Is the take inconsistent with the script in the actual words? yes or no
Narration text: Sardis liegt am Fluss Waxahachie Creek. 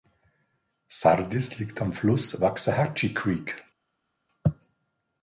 no